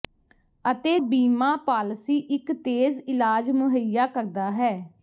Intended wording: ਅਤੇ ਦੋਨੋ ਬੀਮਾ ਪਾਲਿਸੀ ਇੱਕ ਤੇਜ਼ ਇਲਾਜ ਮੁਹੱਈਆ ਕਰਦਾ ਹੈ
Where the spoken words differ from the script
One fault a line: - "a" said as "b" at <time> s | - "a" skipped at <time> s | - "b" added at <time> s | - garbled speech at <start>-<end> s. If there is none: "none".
- "ਦੋਨੋ" skipped at 1.0 s